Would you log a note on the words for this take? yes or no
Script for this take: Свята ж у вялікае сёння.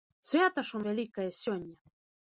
no